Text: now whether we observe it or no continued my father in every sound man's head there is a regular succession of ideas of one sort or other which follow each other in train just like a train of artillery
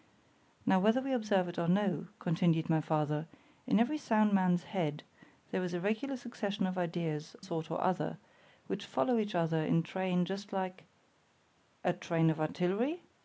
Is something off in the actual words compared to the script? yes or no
yes